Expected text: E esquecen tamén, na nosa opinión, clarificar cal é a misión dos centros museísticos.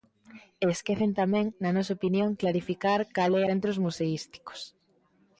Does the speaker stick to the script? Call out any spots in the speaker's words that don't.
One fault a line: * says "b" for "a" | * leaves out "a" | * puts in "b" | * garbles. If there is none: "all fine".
* leaves out "a misión dos"